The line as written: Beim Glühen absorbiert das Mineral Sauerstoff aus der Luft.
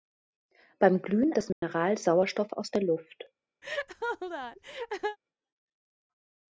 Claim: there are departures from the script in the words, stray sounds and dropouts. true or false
true